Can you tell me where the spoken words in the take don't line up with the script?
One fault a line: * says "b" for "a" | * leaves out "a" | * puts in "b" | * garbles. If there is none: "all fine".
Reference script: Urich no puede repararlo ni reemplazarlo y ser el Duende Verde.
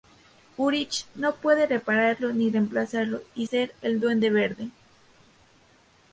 all fine